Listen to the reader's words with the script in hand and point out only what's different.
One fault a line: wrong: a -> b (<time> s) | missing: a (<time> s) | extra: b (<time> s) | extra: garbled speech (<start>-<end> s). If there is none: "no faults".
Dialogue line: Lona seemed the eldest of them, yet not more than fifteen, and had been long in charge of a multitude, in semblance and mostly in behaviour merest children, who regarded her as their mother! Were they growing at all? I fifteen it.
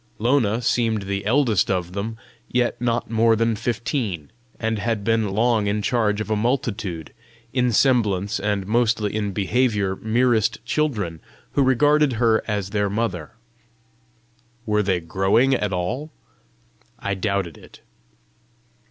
wrong: fifteen -> doubted (17.1 s)